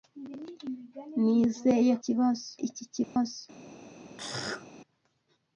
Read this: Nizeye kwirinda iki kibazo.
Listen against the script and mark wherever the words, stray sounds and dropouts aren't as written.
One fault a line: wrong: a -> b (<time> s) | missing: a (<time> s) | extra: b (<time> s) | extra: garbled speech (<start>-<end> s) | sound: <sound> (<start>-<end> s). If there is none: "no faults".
wrong: kwirinda -> kibazo (2.0 s)
sound: dropout (3.0-3.2 s)
sound: throat clearing (4.2-4.7 s)